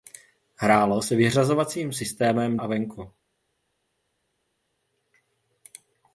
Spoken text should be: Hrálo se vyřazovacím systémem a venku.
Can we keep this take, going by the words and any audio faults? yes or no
yes